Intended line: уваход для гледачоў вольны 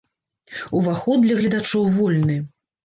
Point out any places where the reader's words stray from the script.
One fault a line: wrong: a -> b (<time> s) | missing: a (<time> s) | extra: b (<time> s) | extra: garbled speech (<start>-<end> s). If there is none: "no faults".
no faults